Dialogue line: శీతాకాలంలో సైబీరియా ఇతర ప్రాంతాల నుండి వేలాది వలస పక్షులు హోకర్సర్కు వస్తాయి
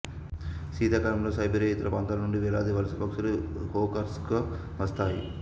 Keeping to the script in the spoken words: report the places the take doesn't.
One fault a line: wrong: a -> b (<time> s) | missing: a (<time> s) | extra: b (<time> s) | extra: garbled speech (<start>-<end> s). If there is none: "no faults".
no faults